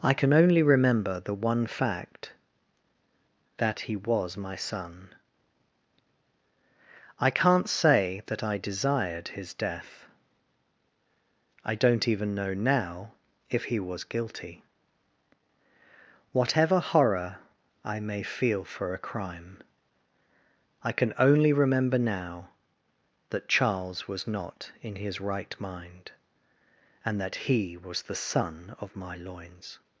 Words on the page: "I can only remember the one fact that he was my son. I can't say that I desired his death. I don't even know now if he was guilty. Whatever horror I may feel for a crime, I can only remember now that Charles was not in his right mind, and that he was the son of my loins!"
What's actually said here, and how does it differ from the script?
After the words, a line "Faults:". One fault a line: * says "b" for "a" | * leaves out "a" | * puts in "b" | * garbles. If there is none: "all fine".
"I can only remember the one fact that he was my son. I can't say that I desired his death. I don't even know now if he was guilty. Whatever horror I may feel for a crime, I can only remember now that Charles was not in his right mind, and that he was the son of my loins!"
Faults:
all fine